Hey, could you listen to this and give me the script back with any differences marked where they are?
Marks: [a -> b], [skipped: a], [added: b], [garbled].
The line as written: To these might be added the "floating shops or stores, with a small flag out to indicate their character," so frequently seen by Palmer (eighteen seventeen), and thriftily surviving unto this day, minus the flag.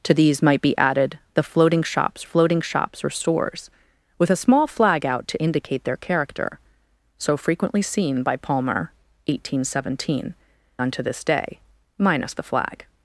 To these might be added the "floating shops [added: floating shops] or stores, with a small flag out to indicate their character," so frequently seen by Palmer (eighteen seventeen), [skipped: and thriftily surviving] unto this day, minus the flag.